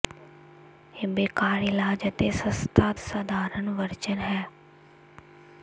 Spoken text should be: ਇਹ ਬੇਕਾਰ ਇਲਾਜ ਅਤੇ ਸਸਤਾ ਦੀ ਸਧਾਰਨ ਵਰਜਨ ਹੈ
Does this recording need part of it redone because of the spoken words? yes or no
yes